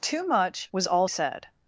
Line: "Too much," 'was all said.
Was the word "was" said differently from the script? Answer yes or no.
no